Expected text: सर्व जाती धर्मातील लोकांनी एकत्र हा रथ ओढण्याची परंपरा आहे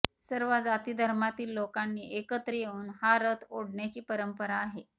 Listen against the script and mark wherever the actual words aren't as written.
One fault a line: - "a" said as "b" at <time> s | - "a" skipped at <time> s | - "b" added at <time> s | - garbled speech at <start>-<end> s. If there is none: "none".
- "येऊन" added at 2.5 s